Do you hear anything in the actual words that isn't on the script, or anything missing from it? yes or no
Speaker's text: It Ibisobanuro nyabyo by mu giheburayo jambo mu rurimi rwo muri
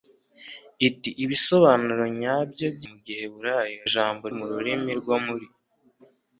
no